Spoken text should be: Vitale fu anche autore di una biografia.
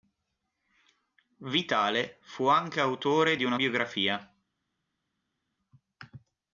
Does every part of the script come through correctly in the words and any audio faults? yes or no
yes